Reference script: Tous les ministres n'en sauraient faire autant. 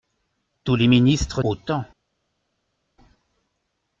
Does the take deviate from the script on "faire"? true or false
true